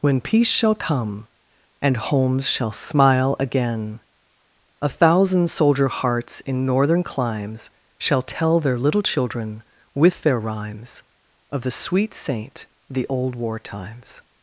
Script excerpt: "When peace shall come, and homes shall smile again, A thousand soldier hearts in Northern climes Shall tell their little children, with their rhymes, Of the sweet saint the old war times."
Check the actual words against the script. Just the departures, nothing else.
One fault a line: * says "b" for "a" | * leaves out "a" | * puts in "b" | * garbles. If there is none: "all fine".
all fine